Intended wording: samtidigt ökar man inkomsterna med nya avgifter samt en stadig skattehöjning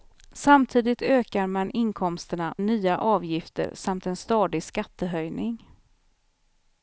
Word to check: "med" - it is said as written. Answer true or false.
false